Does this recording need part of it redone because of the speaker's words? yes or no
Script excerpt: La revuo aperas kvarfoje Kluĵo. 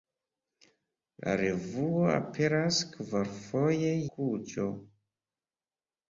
no